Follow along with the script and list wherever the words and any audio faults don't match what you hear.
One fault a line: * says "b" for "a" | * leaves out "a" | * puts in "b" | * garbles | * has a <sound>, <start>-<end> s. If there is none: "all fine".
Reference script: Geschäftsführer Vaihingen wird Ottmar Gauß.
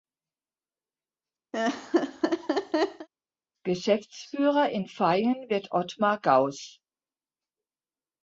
* has a laugh, 1.5-3.1 s
* puts in "in"